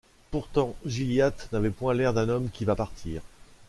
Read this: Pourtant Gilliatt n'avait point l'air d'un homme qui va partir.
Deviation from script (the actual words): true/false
false